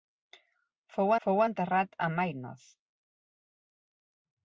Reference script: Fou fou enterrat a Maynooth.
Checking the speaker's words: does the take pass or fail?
pass